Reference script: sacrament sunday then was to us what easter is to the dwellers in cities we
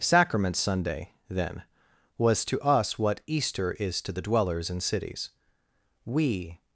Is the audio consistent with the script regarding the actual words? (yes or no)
yes